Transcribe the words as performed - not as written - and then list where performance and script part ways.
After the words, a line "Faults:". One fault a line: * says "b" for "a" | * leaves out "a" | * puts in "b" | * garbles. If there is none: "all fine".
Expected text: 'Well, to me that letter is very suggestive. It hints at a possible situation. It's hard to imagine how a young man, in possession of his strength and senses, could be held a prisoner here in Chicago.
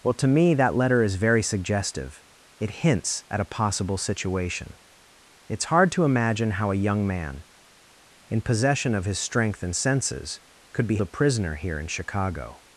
'Well, to me that letter is very suggestive. It hints at a possible situation. It's hard to imagine how a young man, in possession of his strength and senses, could be a prisoner here in Chicago.
Faults:
* leaves out "held"